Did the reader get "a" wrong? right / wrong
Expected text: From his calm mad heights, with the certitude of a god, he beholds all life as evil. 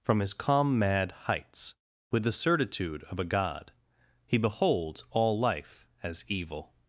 right